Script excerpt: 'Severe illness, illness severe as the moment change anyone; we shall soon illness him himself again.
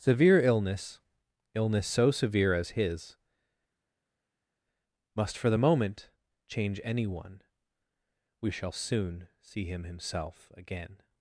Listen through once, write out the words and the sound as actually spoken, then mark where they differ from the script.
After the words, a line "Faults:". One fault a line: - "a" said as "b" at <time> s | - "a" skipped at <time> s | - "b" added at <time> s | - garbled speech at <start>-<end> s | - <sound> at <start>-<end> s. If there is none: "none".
'Severe illness, illness so severe as his, must for the moment change anyone; we shall soon see him himself again.
Faults:
- "so" added at 1.9 s
- "his must for" added at 2.7 s
- "illness" said as "see" at 9.4 s